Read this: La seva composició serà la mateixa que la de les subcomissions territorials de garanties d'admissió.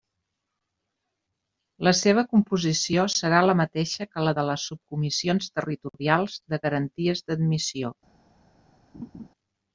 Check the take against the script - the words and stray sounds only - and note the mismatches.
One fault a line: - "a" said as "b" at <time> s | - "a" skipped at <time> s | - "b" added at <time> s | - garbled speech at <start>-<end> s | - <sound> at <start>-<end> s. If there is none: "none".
- laugh at 8.9-9.3 s